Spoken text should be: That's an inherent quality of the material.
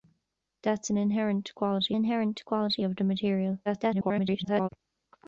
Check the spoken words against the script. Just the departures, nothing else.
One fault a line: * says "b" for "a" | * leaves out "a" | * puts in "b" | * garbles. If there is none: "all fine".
* puts in "inherent quality"
* garbles